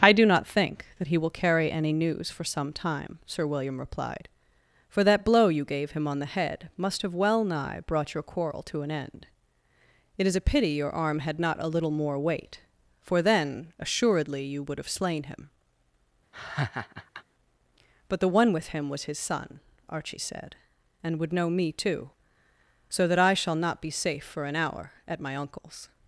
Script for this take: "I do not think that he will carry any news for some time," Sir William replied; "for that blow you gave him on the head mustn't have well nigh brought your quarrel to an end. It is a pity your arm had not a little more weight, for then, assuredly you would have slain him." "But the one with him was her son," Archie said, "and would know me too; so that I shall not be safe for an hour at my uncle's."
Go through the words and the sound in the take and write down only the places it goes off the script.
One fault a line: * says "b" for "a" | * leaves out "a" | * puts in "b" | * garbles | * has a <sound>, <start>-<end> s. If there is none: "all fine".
* says "must" for "mustn't"
* has a laugh, 16.3-17.2 s
* says "his" for "her"